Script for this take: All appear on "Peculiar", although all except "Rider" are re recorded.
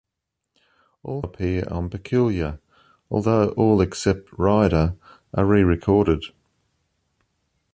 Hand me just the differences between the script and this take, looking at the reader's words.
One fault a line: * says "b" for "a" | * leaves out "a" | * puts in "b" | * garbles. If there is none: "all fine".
all fine